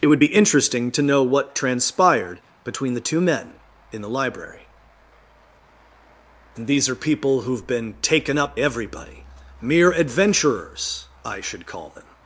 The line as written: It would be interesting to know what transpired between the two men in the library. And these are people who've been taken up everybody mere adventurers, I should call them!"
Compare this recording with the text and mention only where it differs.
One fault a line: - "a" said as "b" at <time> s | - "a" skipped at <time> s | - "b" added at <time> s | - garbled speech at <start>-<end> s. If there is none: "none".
none